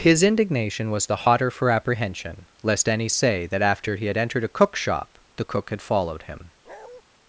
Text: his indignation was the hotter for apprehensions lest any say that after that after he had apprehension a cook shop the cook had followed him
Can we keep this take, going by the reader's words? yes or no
no